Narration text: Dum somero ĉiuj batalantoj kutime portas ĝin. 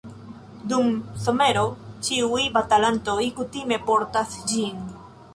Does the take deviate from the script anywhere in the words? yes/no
no